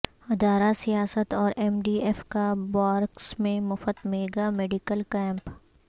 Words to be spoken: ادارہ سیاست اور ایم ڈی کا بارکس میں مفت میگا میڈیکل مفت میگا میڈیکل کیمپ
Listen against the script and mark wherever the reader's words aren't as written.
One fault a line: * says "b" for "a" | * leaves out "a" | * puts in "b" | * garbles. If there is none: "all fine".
* puts in "ایف"
* leaves out "مفت میگا میڈیکل"